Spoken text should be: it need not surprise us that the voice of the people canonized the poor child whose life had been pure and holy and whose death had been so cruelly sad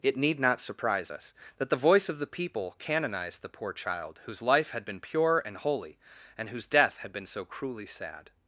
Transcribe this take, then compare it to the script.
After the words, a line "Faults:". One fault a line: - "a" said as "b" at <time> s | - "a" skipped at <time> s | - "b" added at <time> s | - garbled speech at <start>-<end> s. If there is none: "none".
it need not surprise us that the voice of the people canonized the poor child whose life had been pure and holy and whose death had been so cruelly sad
Faults:
none